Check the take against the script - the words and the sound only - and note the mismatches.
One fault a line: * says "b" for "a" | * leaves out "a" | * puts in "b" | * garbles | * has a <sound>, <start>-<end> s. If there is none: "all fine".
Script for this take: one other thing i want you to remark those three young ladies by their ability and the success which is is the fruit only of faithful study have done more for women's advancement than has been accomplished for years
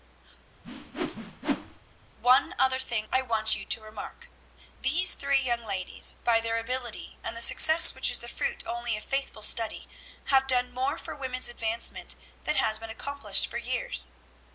* has a whoosh, 0.6-1.8 s
* says "these" for "those"
* leaves out "is"